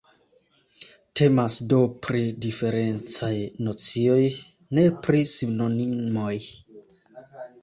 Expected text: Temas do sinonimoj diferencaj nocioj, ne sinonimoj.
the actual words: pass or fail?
fail